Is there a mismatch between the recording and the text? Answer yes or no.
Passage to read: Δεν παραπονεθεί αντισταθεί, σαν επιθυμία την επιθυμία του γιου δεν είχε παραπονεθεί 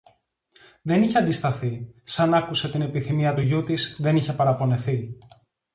yes